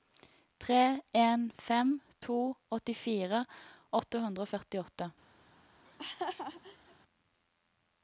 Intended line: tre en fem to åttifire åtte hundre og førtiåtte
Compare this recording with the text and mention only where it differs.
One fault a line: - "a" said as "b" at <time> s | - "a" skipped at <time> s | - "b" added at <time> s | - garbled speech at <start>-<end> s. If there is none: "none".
none